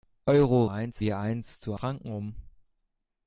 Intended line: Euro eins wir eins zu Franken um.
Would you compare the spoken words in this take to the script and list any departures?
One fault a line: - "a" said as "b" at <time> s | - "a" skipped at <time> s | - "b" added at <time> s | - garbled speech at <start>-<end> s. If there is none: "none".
none